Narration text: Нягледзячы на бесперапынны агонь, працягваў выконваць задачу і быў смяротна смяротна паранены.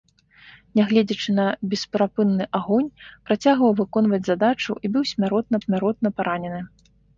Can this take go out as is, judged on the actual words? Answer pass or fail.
pass